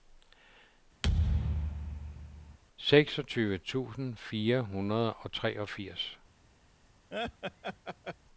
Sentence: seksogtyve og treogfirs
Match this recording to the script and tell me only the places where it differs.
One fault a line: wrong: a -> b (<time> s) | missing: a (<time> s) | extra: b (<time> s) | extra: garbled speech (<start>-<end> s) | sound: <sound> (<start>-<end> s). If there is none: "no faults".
sound: thud (1.0-2.6 s)
extra: tusind fire hundrede (3.6 s)
sound: laugh (7.1-8.2 s)